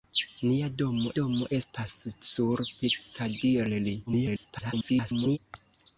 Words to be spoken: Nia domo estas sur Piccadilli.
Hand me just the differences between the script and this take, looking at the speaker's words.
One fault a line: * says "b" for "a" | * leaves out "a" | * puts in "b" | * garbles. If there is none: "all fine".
* puts in "domo"
* garbles